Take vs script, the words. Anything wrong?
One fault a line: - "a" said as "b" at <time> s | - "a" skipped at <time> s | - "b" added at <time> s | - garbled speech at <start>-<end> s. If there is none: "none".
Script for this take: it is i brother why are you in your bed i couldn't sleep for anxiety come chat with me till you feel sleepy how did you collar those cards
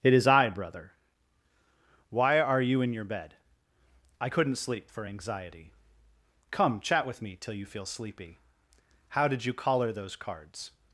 none